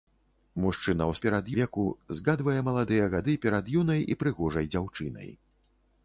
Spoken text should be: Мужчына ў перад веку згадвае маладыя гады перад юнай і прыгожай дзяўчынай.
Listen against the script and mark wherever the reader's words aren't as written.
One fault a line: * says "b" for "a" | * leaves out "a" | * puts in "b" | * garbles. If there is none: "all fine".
all fine